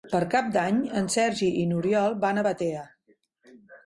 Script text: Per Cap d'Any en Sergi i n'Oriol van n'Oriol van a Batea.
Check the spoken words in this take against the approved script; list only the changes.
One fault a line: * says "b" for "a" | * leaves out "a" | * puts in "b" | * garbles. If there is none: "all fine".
* leaves out "n'Oriol van"